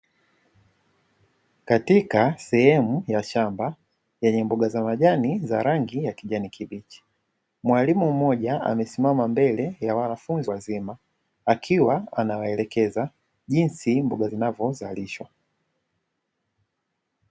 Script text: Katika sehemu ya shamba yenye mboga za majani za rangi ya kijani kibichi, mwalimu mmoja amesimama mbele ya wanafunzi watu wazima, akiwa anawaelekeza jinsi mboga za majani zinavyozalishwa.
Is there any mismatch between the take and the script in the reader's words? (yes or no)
yes